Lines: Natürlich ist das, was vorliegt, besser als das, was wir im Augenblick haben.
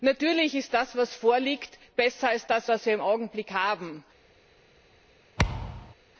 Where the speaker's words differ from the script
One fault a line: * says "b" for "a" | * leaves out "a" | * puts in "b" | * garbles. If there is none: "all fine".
all fine